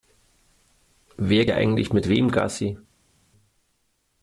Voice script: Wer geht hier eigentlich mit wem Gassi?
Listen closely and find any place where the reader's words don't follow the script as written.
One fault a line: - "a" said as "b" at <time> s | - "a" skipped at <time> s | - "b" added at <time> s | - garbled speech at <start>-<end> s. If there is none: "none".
- "geht" skipped at 1.4 s